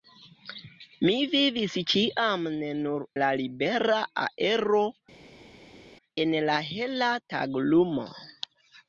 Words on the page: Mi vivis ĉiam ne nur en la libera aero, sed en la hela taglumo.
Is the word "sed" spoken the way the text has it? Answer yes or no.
no